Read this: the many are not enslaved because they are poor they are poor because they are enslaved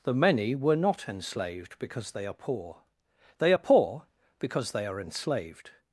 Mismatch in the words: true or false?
true